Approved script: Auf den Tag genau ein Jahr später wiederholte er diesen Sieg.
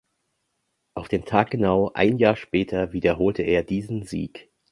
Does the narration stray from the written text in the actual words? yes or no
no